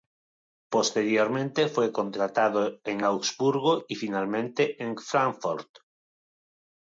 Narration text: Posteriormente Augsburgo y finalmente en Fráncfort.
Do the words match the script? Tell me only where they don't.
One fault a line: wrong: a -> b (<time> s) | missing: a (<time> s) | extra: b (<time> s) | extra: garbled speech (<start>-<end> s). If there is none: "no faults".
extra: fue contratado en (1.7 s)